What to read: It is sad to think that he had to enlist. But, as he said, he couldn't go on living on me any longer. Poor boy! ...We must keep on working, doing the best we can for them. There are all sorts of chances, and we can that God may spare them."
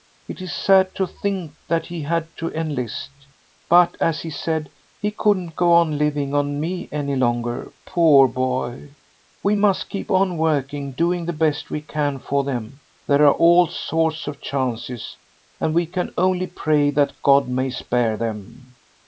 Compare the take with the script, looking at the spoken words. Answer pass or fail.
fail